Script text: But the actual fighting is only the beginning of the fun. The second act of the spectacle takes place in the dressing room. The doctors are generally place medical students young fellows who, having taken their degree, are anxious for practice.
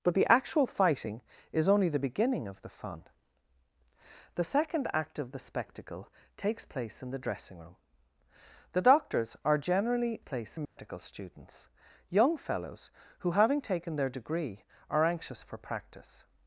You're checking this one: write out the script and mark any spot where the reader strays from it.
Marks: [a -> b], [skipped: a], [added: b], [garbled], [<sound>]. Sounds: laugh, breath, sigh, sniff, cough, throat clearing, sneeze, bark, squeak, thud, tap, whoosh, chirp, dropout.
But the actual fighting is only the beginning of the fun. The second act of the spectacle takes place in the dressing room. The doctors are generally place medical [dropout] students young fellows who, having taken their degree, are anxious for practice.